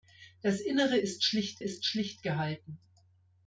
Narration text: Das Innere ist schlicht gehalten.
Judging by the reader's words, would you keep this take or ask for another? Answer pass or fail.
fail